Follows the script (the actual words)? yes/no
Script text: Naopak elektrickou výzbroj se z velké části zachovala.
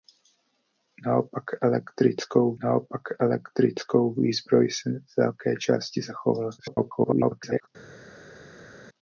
no